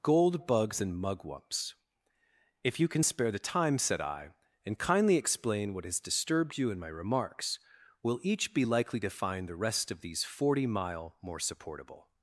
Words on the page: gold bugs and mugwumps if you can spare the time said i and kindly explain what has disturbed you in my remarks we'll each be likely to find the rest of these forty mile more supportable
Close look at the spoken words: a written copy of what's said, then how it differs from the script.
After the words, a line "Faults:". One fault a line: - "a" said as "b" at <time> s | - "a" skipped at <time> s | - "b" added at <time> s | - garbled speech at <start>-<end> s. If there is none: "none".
gold bugs and mugwumps if you can spare the time said i and kindly explain what has disturbed you in my remarks we'll each be likely to find the rest of these forty mile more supportable
Faults:
none